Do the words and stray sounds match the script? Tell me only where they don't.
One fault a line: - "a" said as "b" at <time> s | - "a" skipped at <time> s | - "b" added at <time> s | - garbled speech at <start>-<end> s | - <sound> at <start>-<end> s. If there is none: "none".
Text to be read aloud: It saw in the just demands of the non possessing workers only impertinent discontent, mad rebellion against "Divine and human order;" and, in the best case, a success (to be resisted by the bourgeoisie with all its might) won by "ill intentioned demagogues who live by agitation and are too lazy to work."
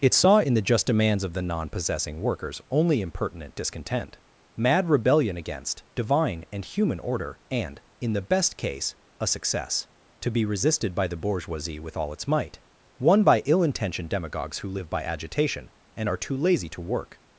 none